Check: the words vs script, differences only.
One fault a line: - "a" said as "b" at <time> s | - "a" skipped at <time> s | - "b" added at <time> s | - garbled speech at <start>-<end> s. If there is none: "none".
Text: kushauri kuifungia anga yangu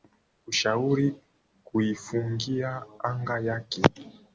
- "yangu" said as "yake" at 3.4 s